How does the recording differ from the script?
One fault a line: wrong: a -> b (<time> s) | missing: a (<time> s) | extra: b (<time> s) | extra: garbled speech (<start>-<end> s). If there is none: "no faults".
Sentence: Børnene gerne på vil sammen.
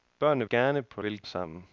no faults